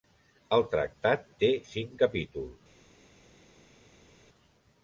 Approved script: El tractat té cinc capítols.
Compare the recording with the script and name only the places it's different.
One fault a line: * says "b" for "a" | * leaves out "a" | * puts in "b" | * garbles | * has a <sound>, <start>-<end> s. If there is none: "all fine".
all fine